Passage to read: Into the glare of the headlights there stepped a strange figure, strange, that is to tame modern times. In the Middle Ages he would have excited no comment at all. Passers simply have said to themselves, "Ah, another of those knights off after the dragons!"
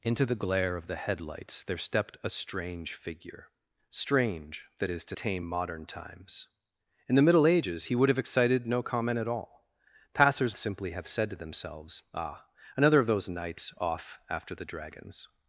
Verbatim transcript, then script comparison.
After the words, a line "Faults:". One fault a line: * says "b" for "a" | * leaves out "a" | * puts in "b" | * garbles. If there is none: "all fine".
Into the glare of the headlights there stepped a strange figure, strange, that is to tame modern times. In the Middle Ages he would have excited no comment at all. Passers simply have said to themselves, "Ah, another of those knights off after the dragons!"
Faults:
all fine